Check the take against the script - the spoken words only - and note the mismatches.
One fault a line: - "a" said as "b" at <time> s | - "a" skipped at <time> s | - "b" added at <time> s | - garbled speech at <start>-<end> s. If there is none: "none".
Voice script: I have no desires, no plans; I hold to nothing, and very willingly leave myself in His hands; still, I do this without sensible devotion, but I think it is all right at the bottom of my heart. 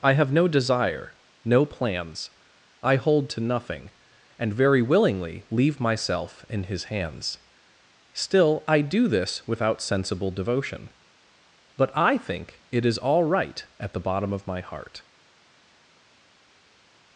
- "desires" said as "desire" at 0.5 s